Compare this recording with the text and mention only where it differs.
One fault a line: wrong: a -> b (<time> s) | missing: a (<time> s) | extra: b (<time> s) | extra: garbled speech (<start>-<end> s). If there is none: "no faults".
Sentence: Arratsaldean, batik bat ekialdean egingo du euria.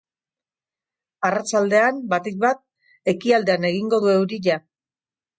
no faults